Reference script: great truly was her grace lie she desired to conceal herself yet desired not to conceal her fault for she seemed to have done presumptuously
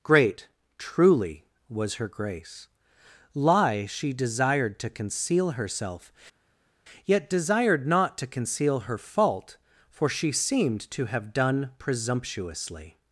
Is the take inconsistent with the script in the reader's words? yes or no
no